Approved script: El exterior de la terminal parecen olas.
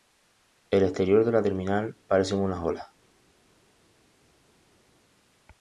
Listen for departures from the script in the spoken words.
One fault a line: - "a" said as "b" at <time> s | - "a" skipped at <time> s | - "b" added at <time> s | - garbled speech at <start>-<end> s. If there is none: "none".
- "unas" added at 2.4 s